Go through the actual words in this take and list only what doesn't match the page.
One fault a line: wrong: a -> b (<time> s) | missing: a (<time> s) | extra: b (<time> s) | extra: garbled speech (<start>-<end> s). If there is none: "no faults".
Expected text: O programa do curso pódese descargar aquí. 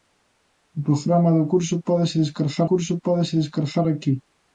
extra: curso pódese descargar (2.7 s)